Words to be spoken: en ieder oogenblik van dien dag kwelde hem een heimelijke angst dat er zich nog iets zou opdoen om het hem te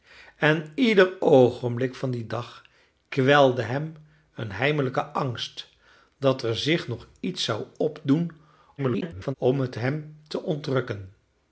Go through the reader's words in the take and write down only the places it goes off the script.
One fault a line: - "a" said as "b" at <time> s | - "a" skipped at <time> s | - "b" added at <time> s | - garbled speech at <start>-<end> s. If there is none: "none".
- garbled speech at 8.8-9.3 s